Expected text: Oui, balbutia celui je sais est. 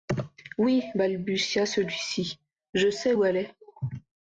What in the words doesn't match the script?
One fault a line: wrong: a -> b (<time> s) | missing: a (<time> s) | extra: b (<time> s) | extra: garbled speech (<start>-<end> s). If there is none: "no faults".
extra: ci (2.0 s)
extra: où elle (3.1 s)